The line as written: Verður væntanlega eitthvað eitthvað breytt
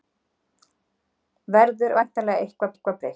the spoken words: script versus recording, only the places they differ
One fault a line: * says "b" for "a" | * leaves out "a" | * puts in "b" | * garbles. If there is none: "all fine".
all fine